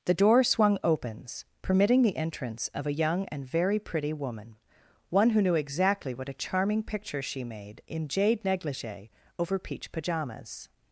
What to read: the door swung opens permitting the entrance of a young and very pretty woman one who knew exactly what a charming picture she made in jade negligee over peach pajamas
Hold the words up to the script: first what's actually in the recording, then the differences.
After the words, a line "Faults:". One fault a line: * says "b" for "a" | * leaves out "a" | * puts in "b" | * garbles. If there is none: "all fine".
the door swung opens permitting the entrance of a young and very pretty woman one who knew exactly what a charming picture she made in jade negligee over peach pajamas
Faults:
all fine